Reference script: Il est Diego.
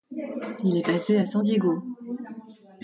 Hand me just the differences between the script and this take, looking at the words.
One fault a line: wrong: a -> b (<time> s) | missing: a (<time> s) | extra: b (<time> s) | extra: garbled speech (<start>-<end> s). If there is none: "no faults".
extra: basé à San (0.8 s)